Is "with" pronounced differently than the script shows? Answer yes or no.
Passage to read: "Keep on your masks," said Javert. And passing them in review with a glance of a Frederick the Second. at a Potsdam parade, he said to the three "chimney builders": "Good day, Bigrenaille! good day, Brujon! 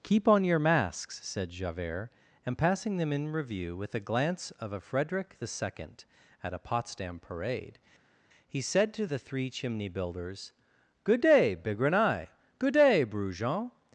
no